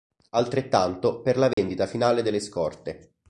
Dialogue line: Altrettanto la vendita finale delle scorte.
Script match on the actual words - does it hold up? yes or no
no